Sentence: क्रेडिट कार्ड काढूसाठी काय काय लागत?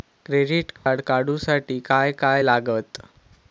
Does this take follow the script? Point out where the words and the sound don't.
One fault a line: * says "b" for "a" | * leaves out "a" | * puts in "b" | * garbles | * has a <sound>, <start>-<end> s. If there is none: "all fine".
* has a dropout, 0.8-0.9 s